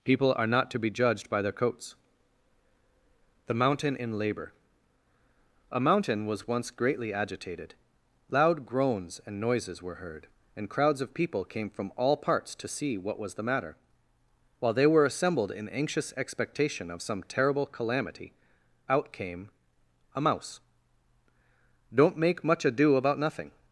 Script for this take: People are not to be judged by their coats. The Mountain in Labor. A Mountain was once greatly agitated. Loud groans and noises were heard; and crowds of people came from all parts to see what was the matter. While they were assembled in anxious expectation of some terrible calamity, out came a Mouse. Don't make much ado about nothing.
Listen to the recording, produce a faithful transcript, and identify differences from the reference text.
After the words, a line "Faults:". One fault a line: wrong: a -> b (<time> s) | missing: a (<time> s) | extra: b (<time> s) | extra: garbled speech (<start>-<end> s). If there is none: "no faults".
People are not to be judged by their coats. The Mountain in Labor. A Mountain was once greatly agitated. Loud groans and noises were heard; and crowds of people came from all parts to see what was the matter. While they were assembled in anxious expectation of some terrible calamity, out came a Mouse. Don't make much ado about nothing.
Faults:
no faults